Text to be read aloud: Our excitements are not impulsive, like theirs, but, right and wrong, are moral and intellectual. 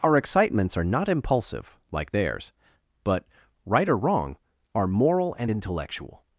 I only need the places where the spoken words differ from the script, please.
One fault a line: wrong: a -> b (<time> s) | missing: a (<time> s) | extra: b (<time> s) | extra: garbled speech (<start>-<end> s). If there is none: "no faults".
wrong: and -> or (3.9 s)